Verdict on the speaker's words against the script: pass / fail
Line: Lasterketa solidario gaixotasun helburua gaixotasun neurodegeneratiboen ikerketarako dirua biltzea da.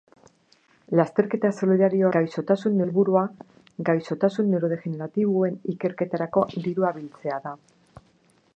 pass